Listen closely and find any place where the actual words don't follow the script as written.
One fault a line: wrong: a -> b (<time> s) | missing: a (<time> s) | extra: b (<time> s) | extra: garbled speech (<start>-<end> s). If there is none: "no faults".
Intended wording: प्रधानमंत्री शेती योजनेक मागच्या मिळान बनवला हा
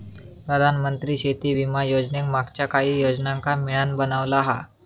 extra: विमा (1.5 s)
extra: काहि योजनांका (2.7 s)